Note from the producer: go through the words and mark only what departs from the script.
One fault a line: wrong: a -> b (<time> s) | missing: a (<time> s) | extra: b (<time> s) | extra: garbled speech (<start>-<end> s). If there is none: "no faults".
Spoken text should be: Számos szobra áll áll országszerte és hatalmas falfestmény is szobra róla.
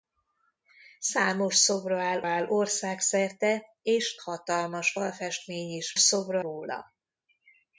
no faults